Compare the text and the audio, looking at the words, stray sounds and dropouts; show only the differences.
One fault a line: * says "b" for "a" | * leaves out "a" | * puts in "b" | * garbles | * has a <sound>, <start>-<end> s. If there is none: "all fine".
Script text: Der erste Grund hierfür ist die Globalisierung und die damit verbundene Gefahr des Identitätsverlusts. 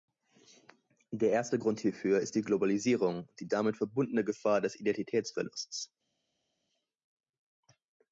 all fine